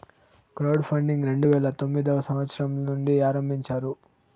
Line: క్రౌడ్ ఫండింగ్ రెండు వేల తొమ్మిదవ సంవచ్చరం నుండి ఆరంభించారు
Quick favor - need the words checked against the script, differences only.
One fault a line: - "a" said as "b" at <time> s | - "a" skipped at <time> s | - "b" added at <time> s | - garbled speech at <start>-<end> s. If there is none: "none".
none